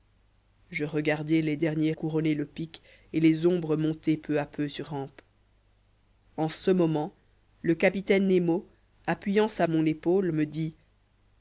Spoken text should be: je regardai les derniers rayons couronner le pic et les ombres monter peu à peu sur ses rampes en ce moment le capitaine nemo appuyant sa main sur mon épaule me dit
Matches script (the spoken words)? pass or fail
fail